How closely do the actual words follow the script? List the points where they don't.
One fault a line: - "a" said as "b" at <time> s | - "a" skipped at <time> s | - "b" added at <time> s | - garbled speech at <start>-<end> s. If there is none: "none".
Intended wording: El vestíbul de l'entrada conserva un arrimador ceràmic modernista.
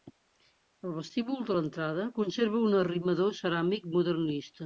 none